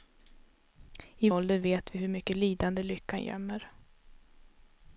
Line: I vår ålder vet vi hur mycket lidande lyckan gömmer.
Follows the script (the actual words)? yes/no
no